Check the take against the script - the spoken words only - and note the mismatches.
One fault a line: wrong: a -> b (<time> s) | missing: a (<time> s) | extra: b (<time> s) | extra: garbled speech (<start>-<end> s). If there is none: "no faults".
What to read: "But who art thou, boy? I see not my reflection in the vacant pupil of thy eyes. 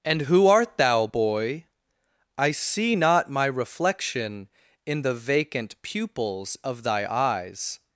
wrong: But -> And (0.0 s)
wrong: pupil -> pupils (5.8 s)